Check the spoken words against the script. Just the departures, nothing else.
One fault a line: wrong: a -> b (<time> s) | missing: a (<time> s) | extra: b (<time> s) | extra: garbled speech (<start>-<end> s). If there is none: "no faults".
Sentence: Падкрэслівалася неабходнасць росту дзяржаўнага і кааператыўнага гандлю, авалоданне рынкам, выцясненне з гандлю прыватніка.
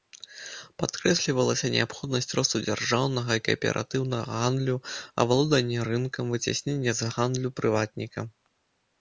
no faults